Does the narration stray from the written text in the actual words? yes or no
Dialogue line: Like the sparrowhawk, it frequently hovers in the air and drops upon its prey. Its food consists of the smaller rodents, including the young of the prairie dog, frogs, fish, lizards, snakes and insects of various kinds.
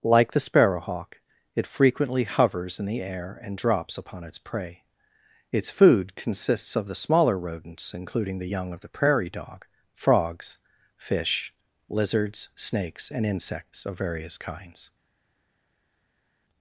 no